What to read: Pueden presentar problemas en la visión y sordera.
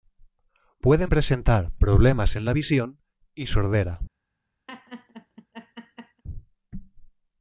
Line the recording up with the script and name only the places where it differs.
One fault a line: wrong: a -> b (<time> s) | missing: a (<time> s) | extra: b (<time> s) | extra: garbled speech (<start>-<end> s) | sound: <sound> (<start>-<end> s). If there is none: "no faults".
sound: laugh (4.7-6.2 s)